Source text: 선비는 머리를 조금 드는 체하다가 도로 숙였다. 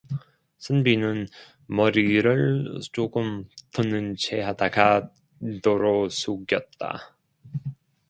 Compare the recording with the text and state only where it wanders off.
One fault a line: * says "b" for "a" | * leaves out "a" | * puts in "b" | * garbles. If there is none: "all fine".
all fine